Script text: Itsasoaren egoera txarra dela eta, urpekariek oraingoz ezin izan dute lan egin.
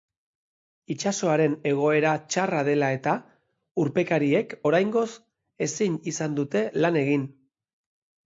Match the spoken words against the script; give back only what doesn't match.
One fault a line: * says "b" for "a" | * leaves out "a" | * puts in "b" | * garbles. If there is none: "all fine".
all fine